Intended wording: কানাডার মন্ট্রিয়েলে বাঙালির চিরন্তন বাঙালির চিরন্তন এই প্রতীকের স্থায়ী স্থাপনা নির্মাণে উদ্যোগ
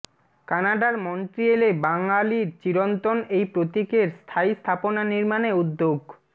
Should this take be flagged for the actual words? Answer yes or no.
yes